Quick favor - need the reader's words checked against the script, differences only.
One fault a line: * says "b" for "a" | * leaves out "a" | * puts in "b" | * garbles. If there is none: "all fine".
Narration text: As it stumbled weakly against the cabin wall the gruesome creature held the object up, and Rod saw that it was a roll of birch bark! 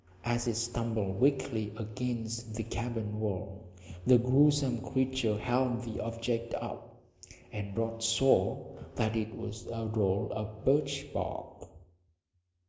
all fine